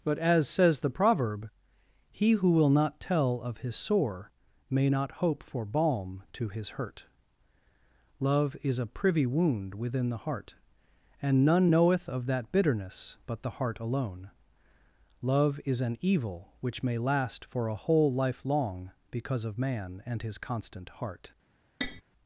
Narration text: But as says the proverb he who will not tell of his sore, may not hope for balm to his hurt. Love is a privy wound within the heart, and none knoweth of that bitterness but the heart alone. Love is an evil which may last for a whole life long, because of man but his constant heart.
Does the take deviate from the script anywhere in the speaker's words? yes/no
yes